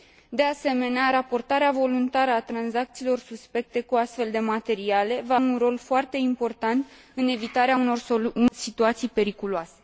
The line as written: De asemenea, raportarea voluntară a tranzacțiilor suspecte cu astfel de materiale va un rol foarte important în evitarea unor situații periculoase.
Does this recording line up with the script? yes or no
yes